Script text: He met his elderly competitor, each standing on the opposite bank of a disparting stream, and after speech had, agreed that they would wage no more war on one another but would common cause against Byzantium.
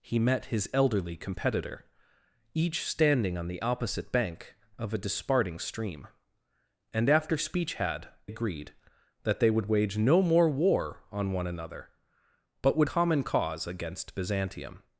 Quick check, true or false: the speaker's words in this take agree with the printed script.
true